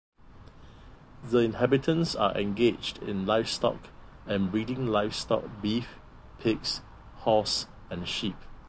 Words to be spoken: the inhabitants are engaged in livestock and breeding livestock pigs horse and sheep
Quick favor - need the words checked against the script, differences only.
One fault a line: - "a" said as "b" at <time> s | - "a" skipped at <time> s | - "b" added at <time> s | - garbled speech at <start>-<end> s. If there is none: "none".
- "beef" added at 5.6 s